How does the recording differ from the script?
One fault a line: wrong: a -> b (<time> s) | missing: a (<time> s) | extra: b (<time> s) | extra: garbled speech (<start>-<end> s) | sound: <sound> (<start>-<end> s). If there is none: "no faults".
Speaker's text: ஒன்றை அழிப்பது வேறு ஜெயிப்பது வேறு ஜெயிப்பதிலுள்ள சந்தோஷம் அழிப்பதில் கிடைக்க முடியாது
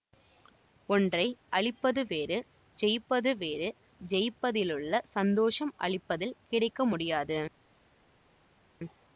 no faults